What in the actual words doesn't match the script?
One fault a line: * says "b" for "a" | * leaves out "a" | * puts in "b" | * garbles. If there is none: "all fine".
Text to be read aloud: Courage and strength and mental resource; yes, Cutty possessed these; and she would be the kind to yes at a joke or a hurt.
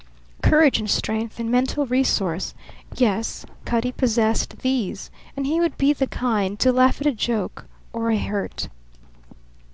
* says "he" for "she"
* says "laugh" for "yes"